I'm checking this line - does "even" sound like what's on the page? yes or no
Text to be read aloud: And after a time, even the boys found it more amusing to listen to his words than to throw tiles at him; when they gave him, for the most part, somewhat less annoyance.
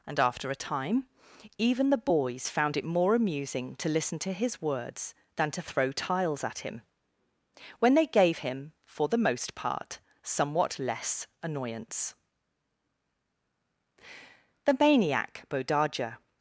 yes